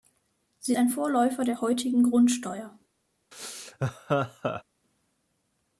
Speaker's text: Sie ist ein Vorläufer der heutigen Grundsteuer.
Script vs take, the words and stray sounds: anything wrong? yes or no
yes